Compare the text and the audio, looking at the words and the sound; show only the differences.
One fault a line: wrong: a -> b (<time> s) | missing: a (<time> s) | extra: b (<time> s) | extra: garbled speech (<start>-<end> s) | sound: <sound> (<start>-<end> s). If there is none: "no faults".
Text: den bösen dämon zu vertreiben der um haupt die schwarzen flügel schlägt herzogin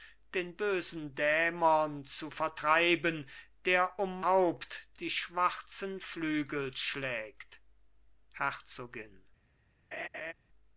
sound: laugh (9.9-10.3 s)